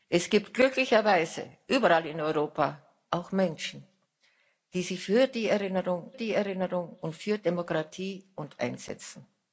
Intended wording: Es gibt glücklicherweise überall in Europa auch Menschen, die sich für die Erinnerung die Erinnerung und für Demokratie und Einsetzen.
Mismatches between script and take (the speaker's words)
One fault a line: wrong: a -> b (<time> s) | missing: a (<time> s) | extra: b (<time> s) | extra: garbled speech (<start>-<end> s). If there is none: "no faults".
no faults